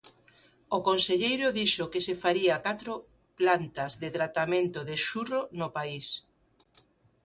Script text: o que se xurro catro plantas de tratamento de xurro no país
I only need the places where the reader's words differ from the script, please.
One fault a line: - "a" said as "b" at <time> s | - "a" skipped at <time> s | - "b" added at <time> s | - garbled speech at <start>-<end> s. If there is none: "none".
- "conselleiro dixo" added at 0.9 s
- "xurro" said as "faría" at 2.2 s